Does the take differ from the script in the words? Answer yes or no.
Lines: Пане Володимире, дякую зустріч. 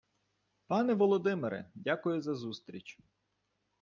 yes